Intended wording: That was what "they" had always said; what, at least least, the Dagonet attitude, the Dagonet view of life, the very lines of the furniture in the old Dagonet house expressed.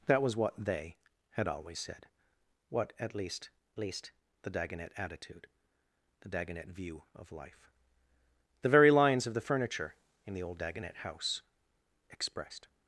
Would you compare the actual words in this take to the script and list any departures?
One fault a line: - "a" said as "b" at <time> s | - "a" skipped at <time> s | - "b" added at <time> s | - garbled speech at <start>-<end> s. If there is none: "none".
none